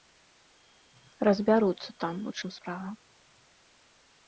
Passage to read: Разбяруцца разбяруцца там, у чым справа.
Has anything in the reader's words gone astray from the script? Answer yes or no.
yes